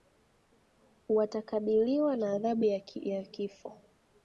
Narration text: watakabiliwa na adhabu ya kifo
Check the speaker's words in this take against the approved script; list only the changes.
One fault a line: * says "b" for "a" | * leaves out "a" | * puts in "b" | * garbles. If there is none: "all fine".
all fine